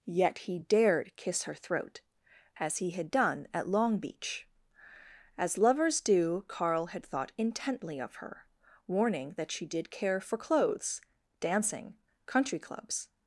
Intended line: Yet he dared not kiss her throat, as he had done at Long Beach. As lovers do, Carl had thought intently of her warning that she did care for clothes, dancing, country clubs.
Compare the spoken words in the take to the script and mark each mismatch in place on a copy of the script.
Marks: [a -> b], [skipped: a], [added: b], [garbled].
Yet he dared [skipped: not] kiss her throat, as he had done at Long Beach. As lovers do, Carl had thought intently of her warning that she did care for clothes, dancing, country clubs.